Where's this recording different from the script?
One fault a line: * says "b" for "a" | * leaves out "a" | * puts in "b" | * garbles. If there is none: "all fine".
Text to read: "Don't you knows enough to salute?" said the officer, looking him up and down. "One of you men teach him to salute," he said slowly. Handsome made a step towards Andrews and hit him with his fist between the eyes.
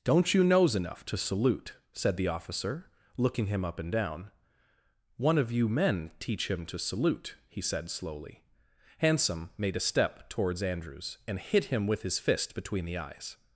all fine